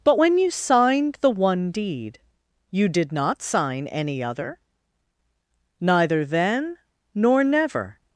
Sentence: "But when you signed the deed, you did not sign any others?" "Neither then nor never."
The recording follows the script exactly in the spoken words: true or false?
false